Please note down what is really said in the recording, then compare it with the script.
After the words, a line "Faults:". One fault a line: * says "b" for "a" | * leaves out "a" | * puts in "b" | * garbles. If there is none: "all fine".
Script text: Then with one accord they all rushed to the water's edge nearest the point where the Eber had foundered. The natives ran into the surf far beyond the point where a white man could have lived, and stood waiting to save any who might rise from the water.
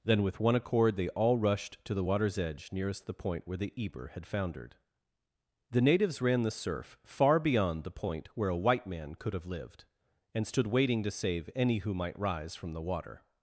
Then with one accord they all rushed to the water's edge nearest the point where the Eber had foundered. The natives ran the surf far beyond the point where a white man could have lived, and stood waiting to save any who might rise from the water.
Faults:
* leaves out "into"